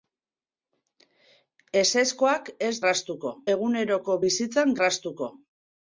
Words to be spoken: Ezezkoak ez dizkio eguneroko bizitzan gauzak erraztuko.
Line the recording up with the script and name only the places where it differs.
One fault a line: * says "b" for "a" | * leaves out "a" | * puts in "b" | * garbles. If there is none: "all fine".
* says "erraztuko" for "dizkio"
* leaves out "gauzak"